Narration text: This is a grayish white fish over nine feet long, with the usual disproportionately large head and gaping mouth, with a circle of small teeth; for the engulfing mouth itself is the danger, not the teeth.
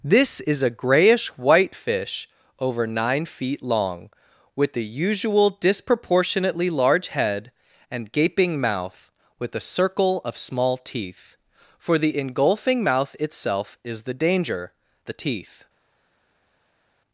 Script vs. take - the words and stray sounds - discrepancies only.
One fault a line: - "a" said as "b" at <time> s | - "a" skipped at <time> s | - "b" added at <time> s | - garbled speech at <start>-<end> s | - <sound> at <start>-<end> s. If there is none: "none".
- "not" skipped at 14.7 s